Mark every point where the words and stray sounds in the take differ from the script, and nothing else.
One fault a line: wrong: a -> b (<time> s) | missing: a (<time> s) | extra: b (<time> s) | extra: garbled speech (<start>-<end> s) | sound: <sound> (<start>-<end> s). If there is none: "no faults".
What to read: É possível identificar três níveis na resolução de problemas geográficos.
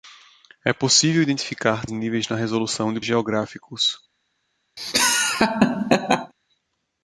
missing: três (1.9 s)
missing: problemas (3.0 s)
sound: laugh (4.8-6.3 s)